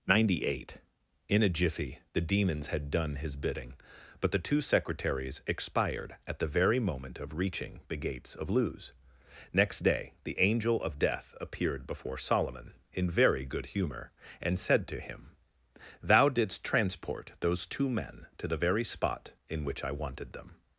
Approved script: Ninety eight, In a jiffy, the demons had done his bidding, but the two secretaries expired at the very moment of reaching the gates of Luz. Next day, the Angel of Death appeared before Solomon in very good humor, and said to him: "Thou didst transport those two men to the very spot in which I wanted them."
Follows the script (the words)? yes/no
yes